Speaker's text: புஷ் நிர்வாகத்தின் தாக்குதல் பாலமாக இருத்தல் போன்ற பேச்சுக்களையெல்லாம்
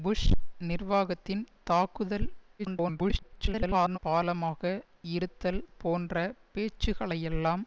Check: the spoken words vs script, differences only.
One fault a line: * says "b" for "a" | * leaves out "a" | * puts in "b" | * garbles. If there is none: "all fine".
* garbles